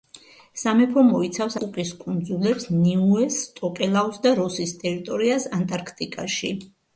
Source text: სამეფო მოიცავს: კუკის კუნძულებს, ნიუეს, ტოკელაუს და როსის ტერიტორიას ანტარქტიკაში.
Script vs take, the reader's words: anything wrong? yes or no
no